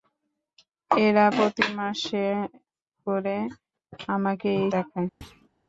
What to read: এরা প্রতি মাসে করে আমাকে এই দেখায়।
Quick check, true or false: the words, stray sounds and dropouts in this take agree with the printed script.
false